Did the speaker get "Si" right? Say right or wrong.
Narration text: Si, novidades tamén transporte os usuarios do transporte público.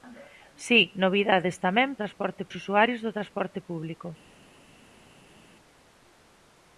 right